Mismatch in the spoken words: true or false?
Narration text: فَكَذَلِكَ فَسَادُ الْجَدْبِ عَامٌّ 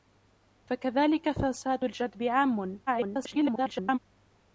true